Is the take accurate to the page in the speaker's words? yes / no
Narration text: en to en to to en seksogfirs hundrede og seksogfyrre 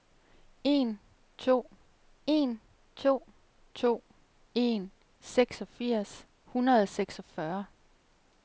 yes